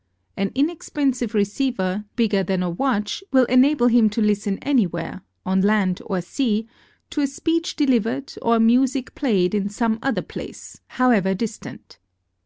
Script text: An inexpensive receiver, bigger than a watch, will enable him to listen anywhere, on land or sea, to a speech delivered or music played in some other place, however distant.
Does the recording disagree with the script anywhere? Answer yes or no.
no